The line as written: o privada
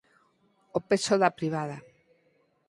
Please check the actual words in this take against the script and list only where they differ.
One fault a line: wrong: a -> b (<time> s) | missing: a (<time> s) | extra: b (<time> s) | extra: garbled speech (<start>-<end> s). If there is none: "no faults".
extra: peso da (0.9 s)